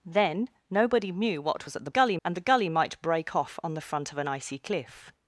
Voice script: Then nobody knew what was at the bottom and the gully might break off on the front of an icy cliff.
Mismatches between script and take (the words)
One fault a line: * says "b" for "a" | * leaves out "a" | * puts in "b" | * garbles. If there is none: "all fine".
* says "gully" for "bottom"